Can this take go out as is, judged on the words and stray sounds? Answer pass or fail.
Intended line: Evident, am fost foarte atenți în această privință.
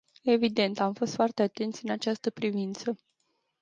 pass